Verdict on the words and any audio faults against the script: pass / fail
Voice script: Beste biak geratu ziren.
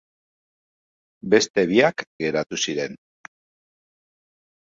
pass